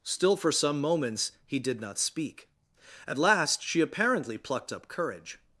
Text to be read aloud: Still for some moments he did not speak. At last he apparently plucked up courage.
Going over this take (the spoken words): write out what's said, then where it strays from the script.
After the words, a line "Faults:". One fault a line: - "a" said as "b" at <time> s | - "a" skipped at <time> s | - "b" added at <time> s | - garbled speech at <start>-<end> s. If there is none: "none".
Still for some moments he did not speak. At last she apparently plucked up courage.
Faults:
- "he" said as "she" at 3.6 s